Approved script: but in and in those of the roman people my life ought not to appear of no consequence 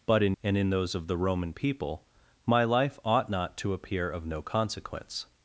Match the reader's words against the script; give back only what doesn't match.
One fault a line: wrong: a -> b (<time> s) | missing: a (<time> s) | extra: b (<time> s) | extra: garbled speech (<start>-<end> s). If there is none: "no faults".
no faults